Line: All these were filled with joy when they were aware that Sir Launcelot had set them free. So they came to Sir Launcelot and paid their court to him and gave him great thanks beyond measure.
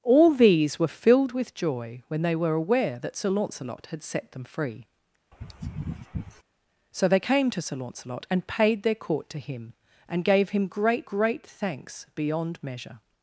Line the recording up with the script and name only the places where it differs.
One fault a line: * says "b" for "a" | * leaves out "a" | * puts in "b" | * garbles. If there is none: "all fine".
* puts in "great"